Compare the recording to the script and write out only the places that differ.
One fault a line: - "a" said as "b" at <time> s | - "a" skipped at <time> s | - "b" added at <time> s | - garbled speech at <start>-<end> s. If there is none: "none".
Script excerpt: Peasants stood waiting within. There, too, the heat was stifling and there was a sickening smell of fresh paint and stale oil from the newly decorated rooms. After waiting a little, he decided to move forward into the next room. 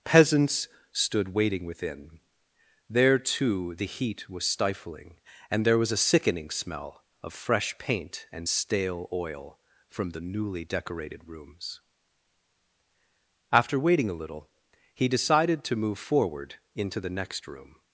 none